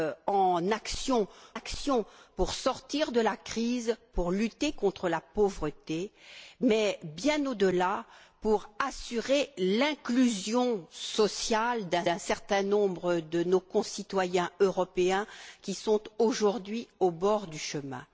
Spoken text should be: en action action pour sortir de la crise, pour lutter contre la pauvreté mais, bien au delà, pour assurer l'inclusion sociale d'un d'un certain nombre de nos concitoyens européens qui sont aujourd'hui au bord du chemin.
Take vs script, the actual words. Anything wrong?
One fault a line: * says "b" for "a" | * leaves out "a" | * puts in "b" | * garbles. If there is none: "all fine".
all fine